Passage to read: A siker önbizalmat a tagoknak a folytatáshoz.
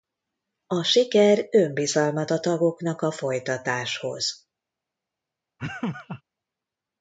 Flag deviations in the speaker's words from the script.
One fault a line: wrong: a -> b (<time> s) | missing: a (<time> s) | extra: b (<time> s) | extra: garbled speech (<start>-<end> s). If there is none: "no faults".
no faults